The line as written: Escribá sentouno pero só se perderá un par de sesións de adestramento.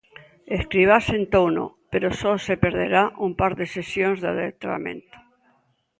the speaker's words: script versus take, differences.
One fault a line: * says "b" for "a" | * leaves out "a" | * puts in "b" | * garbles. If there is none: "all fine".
all fine